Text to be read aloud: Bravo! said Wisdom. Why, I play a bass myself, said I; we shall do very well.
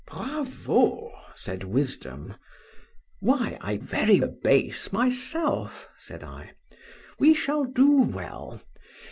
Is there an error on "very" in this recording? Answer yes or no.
yes